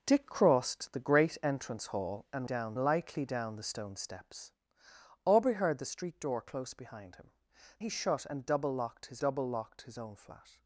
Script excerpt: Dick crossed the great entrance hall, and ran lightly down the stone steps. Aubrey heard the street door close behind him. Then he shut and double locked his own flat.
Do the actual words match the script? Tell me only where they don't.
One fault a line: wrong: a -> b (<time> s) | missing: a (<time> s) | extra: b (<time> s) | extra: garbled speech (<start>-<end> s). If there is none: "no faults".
wrong: ran -> down (2.4 s)
missing: Then (7.3 s)
extra: double locked his (9.2 s)